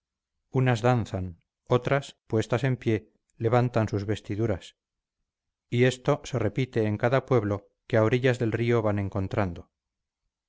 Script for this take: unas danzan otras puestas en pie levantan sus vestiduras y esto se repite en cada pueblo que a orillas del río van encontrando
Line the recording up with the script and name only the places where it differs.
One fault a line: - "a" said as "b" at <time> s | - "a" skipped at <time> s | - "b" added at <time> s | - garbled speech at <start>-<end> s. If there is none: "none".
none